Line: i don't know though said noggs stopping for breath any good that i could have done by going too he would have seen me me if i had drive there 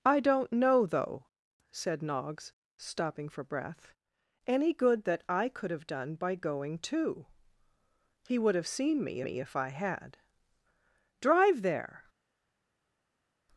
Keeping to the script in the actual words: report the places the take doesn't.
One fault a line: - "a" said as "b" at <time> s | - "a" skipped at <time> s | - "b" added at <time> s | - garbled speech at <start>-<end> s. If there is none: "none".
none